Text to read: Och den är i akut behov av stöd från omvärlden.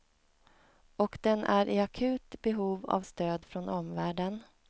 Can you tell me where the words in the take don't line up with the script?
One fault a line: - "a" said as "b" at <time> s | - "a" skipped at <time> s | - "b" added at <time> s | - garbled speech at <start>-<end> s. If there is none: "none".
none